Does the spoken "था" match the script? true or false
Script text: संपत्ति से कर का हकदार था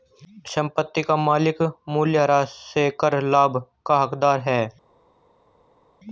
false